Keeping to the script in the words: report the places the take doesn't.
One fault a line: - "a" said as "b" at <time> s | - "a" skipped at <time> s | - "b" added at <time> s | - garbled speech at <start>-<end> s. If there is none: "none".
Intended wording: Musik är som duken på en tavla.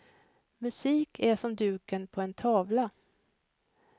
none